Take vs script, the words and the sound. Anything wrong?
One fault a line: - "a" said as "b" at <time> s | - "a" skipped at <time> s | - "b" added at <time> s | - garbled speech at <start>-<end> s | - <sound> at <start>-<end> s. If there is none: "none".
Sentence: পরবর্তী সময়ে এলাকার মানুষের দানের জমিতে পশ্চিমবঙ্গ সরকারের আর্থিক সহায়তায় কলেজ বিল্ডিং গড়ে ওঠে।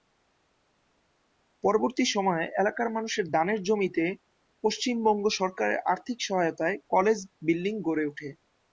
none